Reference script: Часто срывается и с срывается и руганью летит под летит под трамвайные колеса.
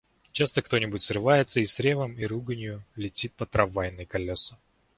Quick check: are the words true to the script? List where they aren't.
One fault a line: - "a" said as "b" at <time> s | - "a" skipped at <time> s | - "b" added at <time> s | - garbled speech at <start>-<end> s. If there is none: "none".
- "кто нибудь" added at 0.6 s
- "срывается" said as "ревом" at 1.8 s
- "летит под" skipped at 3.5 s